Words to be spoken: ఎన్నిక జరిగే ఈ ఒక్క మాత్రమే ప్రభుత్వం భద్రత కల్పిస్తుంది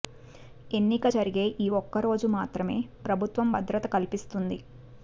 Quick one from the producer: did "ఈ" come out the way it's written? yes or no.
yes